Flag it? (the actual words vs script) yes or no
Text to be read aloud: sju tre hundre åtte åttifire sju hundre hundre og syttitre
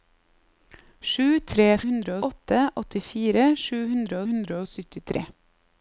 no